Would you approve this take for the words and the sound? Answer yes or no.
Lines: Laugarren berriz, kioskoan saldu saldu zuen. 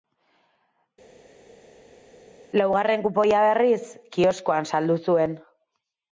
no